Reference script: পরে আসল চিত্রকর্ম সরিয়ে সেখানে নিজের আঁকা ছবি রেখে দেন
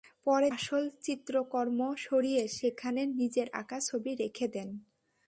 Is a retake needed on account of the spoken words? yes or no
no